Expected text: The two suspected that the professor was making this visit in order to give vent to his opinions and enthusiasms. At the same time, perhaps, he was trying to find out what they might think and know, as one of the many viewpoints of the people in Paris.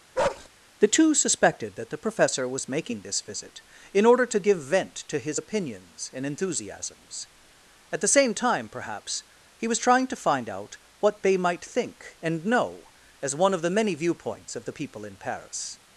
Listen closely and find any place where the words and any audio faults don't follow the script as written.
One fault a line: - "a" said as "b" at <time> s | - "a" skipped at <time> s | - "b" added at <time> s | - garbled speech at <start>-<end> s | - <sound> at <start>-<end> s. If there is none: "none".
- bark at 0.1-0.5 s